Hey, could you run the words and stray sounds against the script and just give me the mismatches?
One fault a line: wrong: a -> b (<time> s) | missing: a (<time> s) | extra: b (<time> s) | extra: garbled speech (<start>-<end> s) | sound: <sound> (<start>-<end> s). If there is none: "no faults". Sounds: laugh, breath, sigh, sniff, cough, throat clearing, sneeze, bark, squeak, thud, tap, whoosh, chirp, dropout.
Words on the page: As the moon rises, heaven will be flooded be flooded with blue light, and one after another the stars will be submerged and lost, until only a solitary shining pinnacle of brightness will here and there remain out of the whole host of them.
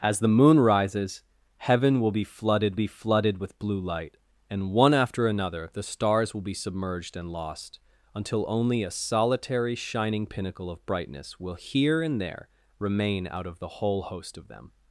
no faults